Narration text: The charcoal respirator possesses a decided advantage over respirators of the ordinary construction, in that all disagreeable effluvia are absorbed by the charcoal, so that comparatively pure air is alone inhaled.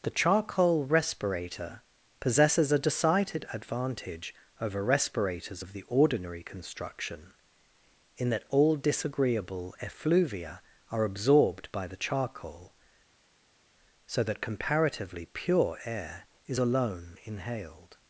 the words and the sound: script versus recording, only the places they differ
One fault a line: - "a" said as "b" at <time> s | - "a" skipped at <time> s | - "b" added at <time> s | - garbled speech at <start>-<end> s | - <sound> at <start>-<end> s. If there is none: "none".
none